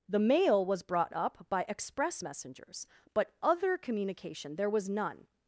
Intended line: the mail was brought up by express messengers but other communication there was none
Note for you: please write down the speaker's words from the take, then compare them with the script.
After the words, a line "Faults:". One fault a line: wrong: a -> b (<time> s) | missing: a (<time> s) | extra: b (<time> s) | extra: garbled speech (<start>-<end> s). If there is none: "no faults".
the mail was brought up by express messengers but other communication there was none
Faults:
no faults